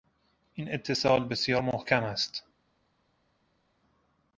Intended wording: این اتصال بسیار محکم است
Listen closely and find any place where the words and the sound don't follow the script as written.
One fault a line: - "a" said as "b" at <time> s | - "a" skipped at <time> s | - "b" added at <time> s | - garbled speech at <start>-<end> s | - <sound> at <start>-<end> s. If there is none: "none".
none